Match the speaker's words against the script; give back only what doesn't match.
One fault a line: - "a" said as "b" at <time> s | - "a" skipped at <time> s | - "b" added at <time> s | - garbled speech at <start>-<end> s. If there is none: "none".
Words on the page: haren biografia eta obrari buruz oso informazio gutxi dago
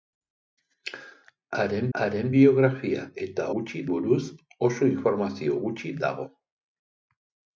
- "haren" added at 2.0 s
- "obrari" said as "gutxi" at 3.5 s